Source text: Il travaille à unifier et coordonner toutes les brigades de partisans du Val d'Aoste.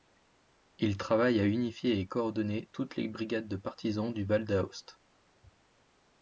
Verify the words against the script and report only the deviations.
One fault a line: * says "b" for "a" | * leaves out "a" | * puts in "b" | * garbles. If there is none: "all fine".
all fine